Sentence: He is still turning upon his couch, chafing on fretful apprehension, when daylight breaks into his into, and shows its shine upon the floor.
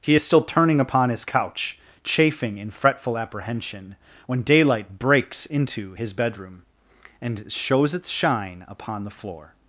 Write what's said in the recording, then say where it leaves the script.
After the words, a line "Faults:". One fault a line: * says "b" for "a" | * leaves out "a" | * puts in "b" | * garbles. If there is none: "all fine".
He is still turning upon his couch, chafing in fretful apprehension, when daylight breaks into his bedroom, and shows its shine upon the floor.
Faults:
* says "in" for "on"
* says "bedroom" for "into"